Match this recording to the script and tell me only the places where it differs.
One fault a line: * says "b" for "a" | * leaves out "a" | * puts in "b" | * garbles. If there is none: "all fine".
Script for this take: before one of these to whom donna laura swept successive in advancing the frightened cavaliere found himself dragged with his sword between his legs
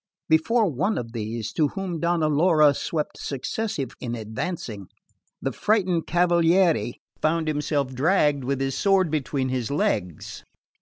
all fine